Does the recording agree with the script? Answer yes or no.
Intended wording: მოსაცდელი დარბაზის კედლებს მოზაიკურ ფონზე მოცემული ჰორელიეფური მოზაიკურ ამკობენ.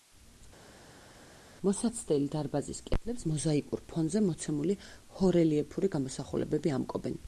no